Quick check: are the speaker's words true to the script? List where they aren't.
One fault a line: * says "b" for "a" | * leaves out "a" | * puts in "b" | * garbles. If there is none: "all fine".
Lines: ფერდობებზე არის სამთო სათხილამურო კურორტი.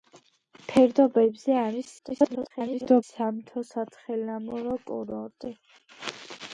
* garbles